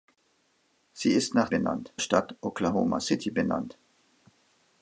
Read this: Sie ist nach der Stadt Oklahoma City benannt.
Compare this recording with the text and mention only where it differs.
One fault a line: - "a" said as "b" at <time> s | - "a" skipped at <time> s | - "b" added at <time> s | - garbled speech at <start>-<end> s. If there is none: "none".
- "der" said as "benannt" at 1.5 s